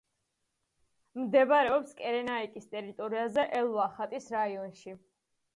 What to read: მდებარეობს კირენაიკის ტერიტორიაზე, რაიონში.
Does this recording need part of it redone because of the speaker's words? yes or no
yes